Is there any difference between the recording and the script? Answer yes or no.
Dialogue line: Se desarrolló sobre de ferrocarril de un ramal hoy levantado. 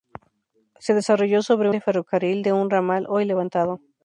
no